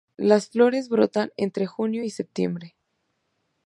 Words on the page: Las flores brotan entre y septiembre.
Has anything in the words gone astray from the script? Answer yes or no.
yes